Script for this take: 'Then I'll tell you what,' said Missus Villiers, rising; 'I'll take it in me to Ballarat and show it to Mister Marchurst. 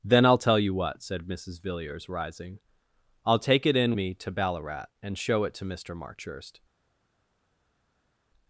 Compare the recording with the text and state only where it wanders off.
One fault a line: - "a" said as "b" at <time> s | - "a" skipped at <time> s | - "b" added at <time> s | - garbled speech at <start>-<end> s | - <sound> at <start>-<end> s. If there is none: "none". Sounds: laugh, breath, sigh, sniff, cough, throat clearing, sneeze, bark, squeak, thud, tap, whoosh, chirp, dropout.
none